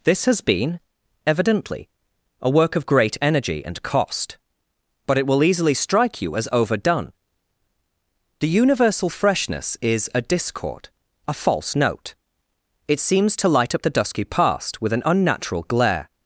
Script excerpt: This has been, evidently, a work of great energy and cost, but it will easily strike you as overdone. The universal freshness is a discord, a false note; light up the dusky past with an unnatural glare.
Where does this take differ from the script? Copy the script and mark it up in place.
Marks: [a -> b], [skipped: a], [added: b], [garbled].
This has been, evidently, a work of great energy and cost, but it will easily strike you as overdone. The universal freshness is a discord, a false note; [added: it seems to] light up the dusky past with an unnatural glare.